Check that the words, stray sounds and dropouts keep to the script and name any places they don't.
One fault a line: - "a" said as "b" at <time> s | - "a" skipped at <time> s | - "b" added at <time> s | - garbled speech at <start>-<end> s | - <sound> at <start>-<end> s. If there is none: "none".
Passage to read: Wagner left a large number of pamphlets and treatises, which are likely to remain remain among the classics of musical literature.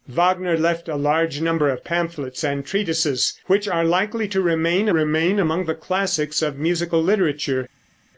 none